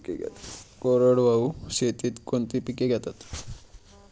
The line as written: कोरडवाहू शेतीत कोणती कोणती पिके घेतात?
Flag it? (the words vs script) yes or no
yes